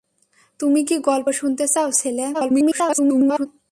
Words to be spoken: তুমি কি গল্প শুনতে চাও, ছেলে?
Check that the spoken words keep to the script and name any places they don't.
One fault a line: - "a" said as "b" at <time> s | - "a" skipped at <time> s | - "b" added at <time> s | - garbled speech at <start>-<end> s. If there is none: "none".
- garbled speech at 2.3-3.5 s